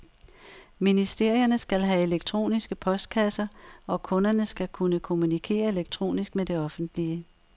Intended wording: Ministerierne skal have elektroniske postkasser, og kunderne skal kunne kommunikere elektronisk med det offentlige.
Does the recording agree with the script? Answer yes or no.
yes